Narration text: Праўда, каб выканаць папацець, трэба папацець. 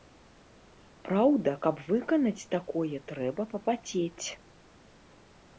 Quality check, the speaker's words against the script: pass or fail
fail